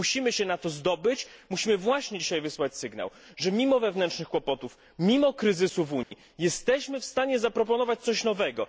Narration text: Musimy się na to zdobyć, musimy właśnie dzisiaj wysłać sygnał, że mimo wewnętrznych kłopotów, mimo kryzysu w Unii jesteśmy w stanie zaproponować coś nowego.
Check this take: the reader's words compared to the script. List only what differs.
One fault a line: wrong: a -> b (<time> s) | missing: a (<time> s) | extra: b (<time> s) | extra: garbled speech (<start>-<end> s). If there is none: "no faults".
no faults